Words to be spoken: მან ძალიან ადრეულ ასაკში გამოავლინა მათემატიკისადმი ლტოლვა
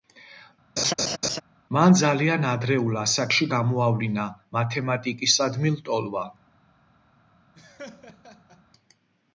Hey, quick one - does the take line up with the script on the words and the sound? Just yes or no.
no